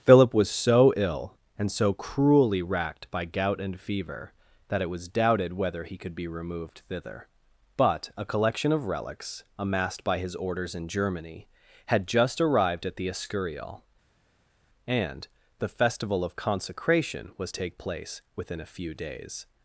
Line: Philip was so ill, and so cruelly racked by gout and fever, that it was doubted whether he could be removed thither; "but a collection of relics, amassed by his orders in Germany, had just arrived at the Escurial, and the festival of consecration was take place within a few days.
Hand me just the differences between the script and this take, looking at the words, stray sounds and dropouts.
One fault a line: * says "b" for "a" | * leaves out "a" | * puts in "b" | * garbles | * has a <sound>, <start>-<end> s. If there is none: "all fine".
all fine